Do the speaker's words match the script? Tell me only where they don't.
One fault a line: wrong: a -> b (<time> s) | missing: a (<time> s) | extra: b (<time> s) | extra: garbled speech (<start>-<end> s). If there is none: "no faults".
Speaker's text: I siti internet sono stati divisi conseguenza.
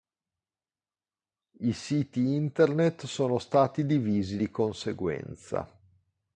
extra: di (4.4 s)